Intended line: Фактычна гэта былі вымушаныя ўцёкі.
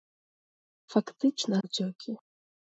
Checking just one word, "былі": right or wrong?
wrong